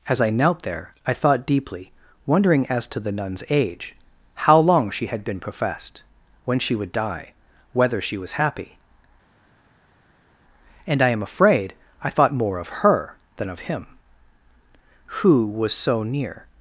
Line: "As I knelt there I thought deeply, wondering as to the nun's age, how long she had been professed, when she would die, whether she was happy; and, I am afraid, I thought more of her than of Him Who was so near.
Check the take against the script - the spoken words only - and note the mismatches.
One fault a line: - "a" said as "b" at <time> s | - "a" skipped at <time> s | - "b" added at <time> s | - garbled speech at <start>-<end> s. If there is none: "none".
none